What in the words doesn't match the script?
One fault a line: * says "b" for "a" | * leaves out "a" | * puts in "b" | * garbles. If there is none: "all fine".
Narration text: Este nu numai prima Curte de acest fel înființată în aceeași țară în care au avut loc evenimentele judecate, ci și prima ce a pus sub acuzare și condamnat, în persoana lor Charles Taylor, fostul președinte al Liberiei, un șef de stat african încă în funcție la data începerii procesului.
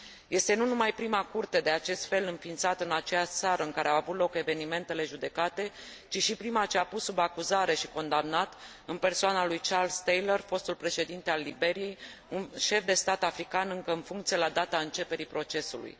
* says "lui" for "lor"